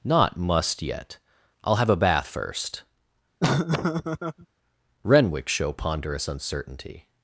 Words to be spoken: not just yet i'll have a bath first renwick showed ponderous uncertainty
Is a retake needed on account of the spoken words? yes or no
yes